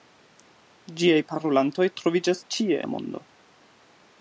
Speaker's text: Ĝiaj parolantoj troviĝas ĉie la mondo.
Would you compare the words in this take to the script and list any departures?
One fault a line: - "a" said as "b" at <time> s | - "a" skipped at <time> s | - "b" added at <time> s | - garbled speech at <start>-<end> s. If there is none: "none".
none